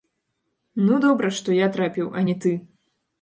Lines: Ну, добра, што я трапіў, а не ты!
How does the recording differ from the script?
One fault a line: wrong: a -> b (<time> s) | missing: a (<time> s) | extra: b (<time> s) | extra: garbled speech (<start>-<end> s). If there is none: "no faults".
no faults